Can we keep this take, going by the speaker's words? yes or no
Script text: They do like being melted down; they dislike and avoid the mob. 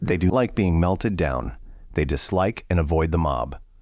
yes